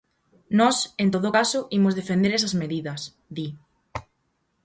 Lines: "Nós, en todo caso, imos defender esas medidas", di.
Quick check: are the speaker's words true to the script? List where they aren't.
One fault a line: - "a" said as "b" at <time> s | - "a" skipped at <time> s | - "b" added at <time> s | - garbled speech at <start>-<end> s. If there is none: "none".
none